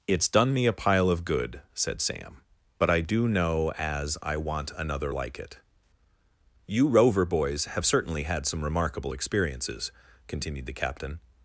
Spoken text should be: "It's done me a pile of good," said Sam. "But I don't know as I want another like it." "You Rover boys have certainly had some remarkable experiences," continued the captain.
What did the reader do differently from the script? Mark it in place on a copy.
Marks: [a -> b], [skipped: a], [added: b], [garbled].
"It's done me a pile of good," said Sam. "But I [don't -> do] know as I want another like it." "You Rover boys have certainly had some remarkable experiences," continued the captain.